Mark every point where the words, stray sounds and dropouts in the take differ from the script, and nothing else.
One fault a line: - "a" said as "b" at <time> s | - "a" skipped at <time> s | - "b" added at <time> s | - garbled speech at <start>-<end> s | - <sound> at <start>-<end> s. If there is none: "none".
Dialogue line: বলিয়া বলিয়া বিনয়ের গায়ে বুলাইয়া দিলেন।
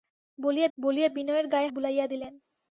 none